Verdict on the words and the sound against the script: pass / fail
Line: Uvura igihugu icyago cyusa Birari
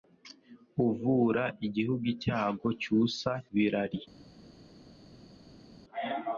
pass